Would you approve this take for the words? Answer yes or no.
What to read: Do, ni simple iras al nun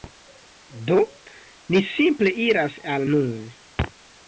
yes